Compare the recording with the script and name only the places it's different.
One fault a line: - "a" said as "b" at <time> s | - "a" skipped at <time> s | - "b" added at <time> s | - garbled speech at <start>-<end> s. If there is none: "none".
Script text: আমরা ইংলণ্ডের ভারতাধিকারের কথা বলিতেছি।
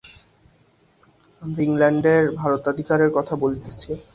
none